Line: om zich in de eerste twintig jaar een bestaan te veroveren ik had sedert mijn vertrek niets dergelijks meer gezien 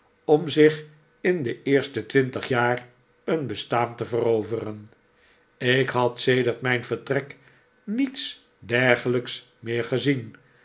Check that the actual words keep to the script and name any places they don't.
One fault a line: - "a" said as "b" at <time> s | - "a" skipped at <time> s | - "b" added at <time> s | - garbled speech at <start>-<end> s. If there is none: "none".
none